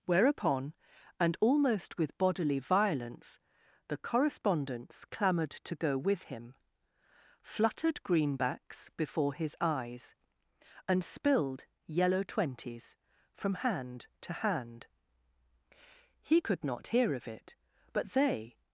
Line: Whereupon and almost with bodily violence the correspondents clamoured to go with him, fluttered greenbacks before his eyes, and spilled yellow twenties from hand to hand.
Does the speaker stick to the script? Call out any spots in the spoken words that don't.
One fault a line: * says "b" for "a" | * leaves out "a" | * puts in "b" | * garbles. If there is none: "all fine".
* puts in "He could not hear of it but they"